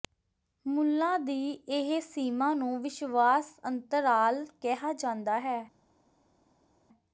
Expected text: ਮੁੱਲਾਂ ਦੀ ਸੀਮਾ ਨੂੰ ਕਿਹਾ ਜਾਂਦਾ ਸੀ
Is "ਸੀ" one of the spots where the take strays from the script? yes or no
yes